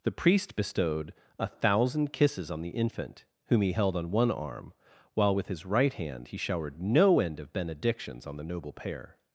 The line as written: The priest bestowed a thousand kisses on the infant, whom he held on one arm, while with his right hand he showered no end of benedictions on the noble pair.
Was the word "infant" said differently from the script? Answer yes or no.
no